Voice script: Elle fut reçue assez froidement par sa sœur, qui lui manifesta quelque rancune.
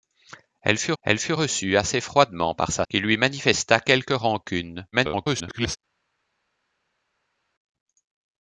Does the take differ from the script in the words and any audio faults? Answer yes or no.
yes